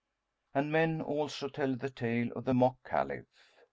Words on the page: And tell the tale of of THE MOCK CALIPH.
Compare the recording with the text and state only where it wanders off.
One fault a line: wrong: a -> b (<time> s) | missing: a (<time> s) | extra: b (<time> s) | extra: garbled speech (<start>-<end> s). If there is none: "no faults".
extra: men also (0.7 s)
missing: of (2.5 s)